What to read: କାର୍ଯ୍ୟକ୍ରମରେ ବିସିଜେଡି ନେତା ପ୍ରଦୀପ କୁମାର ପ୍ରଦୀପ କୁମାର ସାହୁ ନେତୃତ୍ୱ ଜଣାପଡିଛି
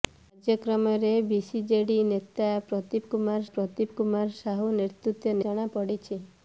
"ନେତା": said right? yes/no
yes